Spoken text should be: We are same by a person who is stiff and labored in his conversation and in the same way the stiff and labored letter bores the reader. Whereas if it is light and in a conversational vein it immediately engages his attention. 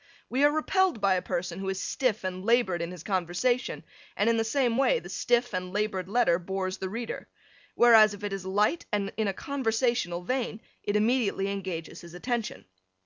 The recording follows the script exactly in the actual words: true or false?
false